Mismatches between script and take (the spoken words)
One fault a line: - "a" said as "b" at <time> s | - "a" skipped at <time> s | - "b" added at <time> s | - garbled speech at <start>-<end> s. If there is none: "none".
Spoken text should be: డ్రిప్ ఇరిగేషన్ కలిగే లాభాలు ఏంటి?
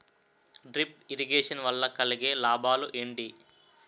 - "వల్ల" added at 1.6 s